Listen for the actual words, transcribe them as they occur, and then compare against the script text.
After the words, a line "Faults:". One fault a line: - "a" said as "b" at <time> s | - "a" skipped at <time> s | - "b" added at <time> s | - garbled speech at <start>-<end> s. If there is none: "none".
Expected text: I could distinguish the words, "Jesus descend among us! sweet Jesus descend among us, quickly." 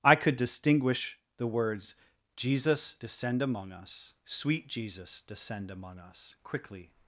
I could distinguish the words, "Jesus descend among us! sweet Jesus descend among us, quickly."
Faults:
none